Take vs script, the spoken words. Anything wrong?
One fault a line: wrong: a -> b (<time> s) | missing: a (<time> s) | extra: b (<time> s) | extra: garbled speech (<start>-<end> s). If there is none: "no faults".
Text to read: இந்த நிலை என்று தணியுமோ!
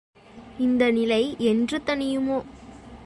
no faults